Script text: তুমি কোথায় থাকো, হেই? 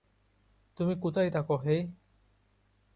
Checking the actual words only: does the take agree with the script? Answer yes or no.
yes